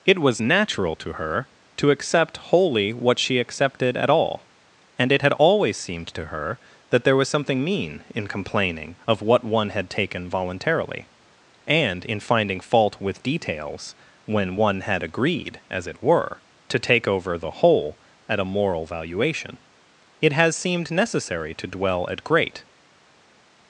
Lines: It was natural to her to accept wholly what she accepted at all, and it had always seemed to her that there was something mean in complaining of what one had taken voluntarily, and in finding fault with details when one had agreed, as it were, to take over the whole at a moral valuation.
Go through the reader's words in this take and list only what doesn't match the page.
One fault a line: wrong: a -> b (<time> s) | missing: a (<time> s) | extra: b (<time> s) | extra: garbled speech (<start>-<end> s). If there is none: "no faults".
extra: It has seemed necessary to dwell at great (20.2 s)